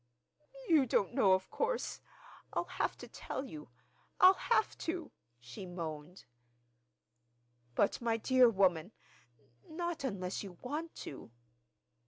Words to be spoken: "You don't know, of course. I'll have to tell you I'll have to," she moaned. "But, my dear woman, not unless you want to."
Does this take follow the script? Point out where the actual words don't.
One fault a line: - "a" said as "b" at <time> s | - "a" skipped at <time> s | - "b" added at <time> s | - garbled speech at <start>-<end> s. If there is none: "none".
none